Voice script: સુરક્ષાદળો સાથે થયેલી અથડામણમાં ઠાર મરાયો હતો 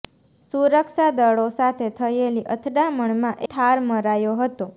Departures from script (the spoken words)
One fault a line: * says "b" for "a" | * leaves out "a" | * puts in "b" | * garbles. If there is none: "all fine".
all fine